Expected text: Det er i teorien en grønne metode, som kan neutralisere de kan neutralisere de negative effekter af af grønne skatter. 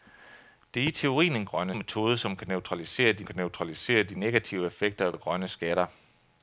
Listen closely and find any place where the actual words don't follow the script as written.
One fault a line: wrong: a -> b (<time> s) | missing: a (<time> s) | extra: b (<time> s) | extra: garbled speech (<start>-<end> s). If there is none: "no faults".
no faults